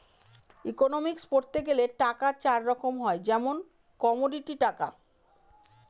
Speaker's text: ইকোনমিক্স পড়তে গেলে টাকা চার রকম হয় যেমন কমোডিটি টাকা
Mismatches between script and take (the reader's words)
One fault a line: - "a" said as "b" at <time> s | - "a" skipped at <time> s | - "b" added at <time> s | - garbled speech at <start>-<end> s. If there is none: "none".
none